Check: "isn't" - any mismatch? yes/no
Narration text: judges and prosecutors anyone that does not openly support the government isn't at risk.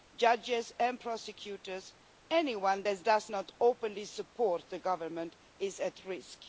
yes